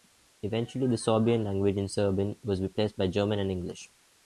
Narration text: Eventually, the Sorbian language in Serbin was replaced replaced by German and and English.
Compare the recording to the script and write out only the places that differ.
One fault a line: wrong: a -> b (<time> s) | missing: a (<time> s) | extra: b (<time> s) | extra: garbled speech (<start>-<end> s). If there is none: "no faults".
missing: replaced (3.0 s)
missing: and (3.5 s)